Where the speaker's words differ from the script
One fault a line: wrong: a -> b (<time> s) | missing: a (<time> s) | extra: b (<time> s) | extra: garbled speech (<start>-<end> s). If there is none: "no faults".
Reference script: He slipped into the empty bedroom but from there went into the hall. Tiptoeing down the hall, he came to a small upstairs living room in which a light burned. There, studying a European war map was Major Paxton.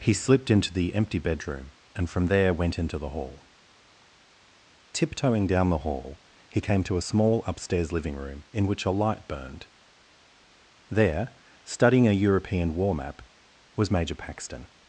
wrong: but -> and (1.9 s)